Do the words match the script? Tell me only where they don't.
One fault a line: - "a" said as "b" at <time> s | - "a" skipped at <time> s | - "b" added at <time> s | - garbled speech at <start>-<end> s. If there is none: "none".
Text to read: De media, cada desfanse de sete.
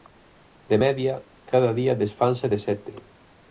- "día" added at 1.7 s